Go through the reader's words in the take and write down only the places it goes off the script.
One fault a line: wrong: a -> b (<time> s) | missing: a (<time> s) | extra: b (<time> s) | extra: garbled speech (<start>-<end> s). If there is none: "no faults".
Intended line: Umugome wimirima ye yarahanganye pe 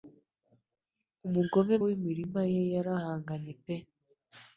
no faults